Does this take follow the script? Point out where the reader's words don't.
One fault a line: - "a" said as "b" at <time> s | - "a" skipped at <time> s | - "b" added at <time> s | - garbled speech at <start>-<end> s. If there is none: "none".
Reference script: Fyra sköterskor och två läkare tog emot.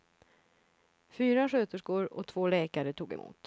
none